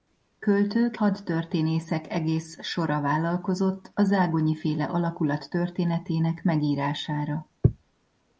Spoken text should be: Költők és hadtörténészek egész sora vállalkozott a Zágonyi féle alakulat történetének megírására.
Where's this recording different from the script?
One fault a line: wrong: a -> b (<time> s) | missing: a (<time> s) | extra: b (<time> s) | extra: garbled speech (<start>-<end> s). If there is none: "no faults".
missing: és (1.0 s)